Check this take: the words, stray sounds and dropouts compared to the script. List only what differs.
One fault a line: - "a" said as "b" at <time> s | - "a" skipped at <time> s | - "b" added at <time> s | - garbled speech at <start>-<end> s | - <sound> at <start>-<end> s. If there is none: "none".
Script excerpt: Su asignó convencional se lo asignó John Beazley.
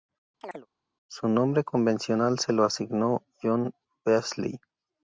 - chirp at 0.4-0.7 s
- "asignó" said as "nombre" at 1.3 s